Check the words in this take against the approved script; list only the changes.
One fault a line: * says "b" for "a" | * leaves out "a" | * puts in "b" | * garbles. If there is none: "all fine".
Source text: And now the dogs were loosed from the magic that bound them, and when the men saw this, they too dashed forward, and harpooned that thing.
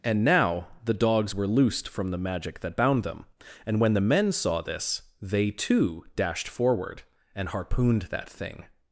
all fine